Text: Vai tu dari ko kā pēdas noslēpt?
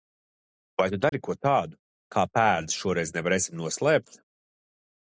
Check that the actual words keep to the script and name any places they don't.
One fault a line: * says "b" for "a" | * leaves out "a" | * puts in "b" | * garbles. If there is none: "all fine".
* puts in "tādu"
* puts in "šoreiz nevarēsim"